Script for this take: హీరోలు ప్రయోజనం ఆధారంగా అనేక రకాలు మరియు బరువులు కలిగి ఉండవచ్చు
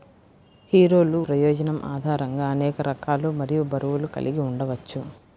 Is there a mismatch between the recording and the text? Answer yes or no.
no